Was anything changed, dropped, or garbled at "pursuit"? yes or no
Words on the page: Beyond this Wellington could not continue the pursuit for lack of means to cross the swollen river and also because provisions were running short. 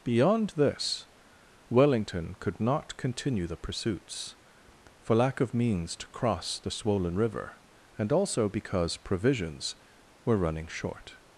yes